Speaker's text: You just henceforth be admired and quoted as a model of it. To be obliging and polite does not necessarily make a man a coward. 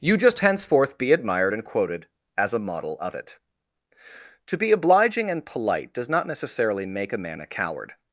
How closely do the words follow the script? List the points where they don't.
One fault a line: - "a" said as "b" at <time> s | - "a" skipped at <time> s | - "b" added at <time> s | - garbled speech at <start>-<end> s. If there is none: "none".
none